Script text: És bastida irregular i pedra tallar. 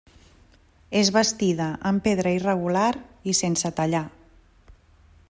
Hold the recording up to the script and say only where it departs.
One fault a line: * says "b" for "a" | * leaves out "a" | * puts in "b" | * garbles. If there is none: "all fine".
* puts in "amb pedra"
* says "sense" for "pedra"